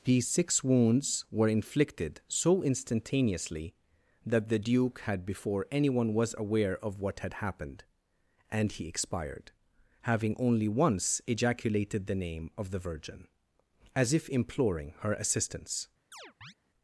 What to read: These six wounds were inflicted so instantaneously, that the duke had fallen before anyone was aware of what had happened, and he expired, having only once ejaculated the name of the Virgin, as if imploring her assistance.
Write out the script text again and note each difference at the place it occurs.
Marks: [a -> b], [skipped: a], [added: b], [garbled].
These six wounds were inflicted so instantaneously, that the duke had [skipped: fallen] before anyone was aware of what had happened, and he expired, having only once ejaculated the name of the Virgin, as if imploring her assistance.